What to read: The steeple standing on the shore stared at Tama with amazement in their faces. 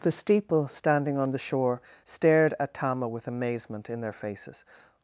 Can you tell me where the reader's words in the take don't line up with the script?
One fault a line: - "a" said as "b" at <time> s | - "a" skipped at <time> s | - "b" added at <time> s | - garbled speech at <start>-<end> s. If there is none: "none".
none